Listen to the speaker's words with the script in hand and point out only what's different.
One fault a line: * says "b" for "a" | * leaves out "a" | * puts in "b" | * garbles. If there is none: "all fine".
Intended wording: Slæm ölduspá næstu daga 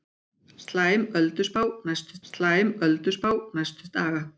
* puts in "slæm ölduspá næstu"